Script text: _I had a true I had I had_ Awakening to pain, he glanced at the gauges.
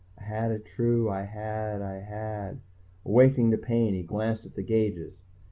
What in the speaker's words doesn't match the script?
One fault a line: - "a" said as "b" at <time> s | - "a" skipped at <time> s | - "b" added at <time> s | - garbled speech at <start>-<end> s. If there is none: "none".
none